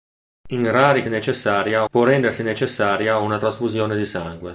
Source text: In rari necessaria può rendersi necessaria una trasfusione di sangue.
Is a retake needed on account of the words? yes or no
no